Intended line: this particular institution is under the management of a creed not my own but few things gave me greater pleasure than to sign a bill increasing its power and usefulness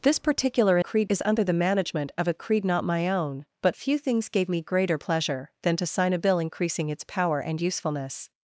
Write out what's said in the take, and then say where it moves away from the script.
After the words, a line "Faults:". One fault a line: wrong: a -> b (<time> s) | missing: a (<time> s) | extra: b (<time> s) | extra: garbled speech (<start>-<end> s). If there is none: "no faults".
this particular creed is under the management of a creed not my own but few things gave me greater pleasure than to sign a bill increasing its power and usefulness
Faults:
wrong: institution -> creed (0.8 s)